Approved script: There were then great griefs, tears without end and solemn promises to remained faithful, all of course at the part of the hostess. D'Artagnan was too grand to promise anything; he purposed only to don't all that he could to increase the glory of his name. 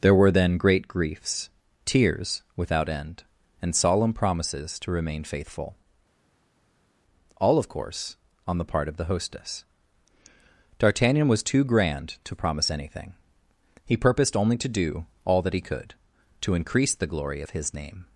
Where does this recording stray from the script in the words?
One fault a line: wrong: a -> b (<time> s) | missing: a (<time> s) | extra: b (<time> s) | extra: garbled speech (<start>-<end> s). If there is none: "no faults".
wrong: remained -> remain (4.9 s)
wrong: at -> on (8.5 s)
wrong: don't -> do (14.7 s)